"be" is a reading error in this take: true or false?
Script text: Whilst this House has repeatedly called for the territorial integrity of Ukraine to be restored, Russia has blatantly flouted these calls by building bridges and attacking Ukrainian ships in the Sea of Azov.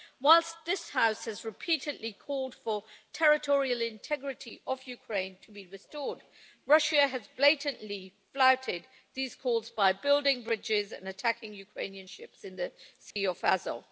false